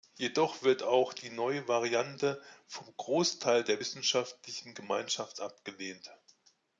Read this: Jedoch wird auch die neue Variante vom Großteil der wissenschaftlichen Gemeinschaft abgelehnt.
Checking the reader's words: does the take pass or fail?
pass